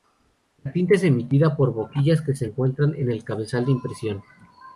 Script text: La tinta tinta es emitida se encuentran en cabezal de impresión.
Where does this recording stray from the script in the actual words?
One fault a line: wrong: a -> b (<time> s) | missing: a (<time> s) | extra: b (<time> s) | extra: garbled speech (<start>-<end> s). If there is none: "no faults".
missing: tinta (0.9 s)
extra: por boquillas que (1.6 s)
extra: el (3.1 s)